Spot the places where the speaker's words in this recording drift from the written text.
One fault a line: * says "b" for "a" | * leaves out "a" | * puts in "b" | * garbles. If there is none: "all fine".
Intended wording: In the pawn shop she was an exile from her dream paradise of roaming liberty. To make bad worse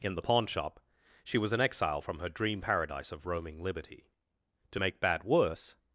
all fine